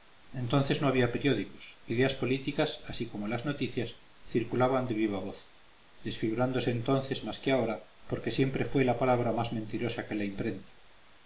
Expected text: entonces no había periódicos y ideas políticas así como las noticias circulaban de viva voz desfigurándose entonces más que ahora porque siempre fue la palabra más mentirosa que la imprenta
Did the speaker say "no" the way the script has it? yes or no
yes